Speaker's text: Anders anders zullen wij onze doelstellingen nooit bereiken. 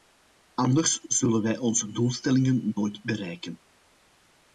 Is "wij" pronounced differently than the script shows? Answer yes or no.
no